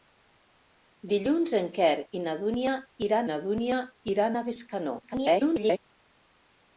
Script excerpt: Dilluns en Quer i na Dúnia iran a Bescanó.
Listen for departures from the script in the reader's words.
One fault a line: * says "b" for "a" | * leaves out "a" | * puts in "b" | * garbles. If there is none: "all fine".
* puts in "na Dúnia iran"
* garbles